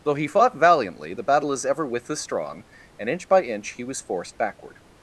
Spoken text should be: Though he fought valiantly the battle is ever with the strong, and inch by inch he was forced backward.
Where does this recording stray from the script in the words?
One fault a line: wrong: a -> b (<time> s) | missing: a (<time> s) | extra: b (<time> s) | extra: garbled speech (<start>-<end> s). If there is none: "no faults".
no faults